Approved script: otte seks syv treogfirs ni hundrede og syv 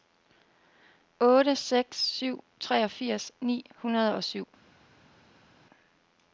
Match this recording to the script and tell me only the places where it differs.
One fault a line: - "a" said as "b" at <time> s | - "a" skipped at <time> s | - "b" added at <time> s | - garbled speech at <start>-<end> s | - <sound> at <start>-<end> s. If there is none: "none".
none